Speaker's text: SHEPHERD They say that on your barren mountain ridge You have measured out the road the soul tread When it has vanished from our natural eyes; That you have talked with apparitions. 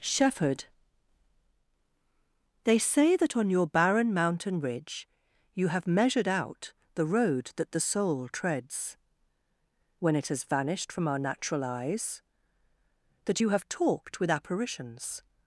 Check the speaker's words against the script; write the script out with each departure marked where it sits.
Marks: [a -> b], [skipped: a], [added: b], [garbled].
SHEPHERD They say that on your barren mountain ridge You have measured out the road [added: that] the soul [tread -> treads] When it has vanished from our natural eyes; That you have talked with apparitions.